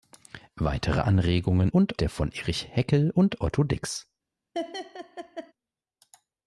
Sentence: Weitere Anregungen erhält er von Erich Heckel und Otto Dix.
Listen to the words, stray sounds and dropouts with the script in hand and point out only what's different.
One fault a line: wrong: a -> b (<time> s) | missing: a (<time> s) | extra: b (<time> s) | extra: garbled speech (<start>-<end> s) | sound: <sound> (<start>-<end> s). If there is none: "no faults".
wrong: erhält -> und (1.7 s)
sound: laugh (4.5-5.5 s)